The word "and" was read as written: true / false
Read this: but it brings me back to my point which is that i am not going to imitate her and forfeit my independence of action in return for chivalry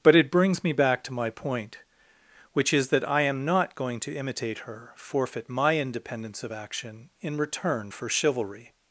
false